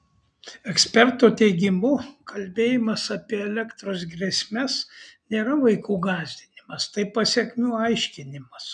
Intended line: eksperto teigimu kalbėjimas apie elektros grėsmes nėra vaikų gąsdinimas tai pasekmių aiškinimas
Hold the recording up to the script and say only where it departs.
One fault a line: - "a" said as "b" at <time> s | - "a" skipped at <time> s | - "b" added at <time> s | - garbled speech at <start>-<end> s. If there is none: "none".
none